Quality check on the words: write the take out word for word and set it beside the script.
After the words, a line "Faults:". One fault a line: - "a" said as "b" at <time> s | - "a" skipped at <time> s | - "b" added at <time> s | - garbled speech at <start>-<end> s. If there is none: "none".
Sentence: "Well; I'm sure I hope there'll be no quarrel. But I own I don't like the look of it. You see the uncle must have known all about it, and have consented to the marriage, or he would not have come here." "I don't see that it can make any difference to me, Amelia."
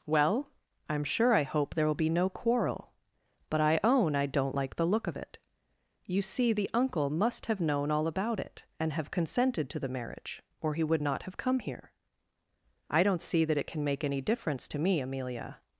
"Well; I'm sure I hope there'll be no quarrel. But I own I don't like the look of it. You see the uncle must have known all about it, and have consented to the marriage, or he would not have come here." "I don't see that it can make any difference to me, Amelia."
Faults:
none